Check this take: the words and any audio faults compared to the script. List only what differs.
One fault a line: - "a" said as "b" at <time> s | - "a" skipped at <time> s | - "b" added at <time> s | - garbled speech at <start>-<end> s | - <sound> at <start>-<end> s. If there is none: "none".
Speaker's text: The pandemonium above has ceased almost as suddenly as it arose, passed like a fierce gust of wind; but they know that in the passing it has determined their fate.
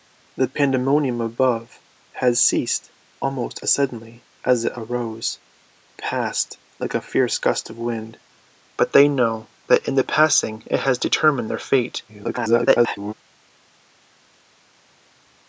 - garbled speech at 12.1-13.1 s